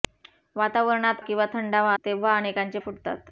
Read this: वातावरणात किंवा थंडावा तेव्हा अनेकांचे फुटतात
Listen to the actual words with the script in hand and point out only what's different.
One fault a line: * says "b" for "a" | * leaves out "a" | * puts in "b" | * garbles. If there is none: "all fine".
all fine